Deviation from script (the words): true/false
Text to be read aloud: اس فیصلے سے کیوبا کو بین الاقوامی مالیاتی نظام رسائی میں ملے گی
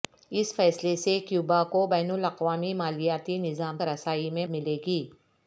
false